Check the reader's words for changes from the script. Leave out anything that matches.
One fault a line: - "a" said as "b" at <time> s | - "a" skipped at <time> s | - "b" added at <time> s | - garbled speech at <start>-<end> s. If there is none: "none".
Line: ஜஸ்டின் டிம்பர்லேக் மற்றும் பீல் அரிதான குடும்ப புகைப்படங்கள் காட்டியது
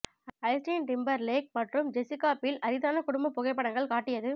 - "ஜெசிகா" added at 1.9 s